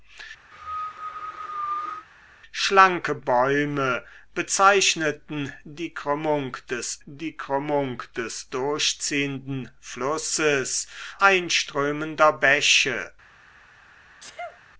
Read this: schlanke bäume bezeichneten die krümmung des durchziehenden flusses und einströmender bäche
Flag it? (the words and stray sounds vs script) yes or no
yes